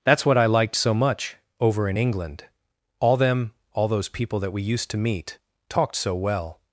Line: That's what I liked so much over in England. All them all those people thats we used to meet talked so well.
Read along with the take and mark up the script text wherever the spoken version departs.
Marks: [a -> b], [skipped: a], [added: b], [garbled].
That's what I liked so much over in England. All them all those people [thats -> that] we used to meet talked so well.